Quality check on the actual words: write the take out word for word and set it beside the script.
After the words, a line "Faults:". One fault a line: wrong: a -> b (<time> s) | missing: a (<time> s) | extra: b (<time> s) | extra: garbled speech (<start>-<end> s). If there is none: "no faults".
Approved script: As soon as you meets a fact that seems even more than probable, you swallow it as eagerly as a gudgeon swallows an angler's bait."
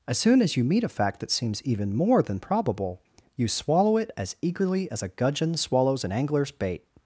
As soon as you meet a fact that seems even more than probable, you swallow it as eagerly as a gudgeon swallows an angler's bait."
Faults:
wrong: meets -> meet (0.6 s)